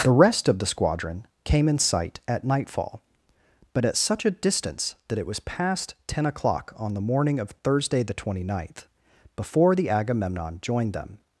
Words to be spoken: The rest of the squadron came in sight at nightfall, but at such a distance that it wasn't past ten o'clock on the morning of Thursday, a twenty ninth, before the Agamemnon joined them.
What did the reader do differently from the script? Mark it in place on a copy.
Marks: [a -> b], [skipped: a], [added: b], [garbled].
The rest of the squadron came in sight at nightfall, but at such a distance that it [wasn't -> was] past ten o'clock on the morning of Thursday, [a -> the] twenty ninth, before the Agamemnon joined them.